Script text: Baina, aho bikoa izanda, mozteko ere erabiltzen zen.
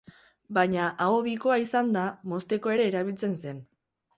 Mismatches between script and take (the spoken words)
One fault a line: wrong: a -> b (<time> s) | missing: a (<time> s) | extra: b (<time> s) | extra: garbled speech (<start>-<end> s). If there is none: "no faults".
no faults